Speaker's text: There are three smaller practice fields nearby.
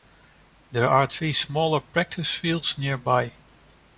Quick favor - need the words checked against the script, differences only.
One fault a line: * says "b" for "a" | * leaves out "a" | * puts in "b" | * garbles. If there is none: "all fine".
all fine